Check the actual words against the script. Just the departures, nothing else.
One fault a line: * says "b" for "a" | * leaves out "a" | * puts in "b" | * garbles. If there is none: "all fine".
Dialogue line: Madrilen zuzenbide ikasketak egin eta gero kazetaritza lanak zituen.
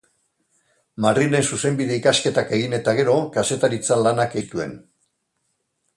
all fine